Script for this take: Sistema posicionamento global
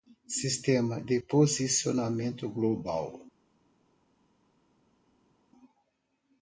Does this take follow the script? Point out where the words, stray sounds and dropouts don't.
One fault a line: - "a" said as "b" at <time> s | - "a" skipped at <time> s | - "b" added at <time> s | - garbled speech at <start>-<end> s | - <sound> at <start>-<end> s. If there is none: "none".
- "de" added at 1.0 s